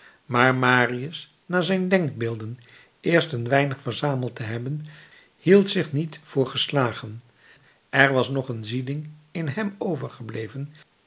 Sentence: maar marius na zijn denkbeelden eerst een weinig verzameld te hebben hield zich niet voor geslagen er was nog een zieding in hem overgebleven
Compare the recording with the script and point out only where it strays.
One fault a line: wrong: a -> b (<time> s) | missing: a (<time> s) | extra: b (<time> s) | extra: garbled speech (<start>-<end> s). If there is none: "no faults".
no faults